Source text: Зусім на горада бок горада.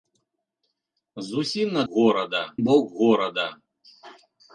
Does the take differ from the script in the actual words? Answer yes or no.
no